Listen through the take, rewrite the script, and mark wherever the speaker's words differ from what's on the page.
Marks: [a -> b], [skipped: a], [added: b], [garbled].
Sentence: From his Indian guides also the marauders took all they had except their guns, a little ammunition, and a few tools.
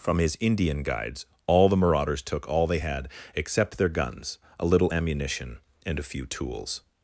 From his Indian guides [also -> all] the marauders took all they had except their guns, a little ammunition, and a few tools.